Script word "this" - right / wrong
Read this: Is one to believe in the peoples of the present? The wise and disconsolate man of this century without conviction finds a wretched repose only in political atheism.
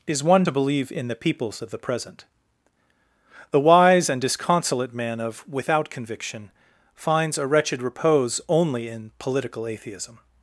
wrong